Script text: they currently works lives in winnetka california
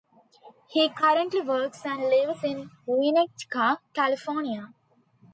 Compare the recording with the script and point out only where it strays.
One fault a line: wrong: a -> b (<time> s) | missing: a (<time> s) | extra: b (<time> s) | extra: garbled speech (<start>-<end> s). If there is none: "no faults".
wrong: they -> he (0.7 s)
extra: and (1.9 s)